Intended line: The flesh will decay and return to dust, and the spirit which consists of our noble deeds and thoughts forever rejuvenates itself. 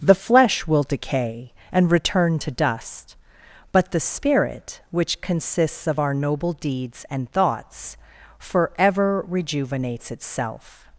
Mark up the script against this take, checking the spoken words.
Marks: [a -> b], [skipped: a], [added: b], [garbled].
The flesh will decay and return to dust, [and -> but] the spirit which consists of our noble deeds and thoughts forever rejuvenates itself.